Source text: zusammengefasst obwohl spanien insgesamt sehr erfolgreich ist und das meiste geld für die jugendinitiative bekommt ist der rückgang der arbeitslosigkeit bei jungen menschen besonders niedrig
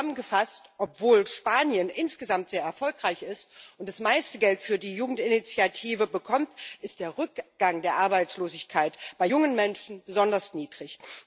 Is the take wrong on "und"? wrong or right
right